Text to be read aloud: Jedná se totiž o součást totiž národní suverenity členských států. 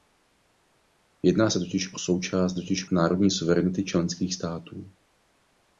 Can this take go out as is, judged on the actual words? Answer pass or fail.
pass